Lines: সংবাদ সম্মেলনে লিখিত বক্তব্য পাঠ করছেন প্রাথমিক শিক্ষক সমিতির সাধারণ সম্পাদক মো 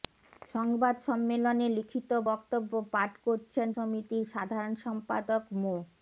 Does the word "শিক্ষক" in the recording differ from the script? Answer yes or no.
yes